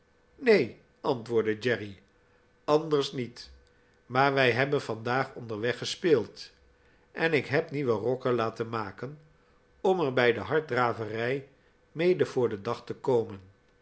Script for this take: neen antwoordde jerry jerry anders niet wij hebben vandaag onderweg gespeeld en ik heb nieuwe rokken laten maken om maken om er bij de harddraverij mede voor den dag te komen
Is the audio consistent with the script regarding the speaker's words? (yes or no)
no